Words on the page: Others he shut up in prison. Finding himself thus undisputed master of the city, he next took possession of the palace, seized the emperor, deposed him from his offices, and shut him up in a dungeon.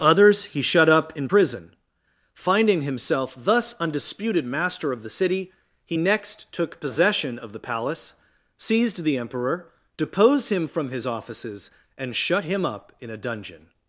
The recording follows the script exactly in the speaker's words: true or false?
true